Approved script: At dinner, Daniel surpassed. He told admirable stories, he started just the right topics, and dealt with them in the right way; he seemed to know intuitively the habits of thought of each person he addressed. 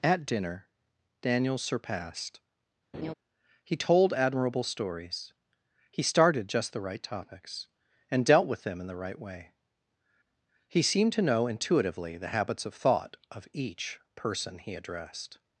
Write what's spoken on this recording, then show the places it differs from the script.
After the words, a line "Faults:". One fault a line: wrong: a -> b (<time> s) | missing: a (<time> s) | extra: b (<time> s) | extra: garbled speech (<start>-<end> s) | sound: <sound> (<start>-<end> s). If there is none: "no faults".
At dinner, Daniel surpassed. He told admirable stories, he started just the right topics, and dealt with them in the right way; he seemed to know intuitively the habits of thought of each person he addressed.
Faults:
sound: laugh (2.9-3.1 s)